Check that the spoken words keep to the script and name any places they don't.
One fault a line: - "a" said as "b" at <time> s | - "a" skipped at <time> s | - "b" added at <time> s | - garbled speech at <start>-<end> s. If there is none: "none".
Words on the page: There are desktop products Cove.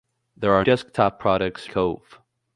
none